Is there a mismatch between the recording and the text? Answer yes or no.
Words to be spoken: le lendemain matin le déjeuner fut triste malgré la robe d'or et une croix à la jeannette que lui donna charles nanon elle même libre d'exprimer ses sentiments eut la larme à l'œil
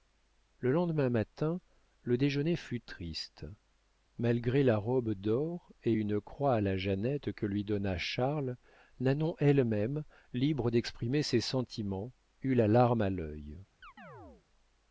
no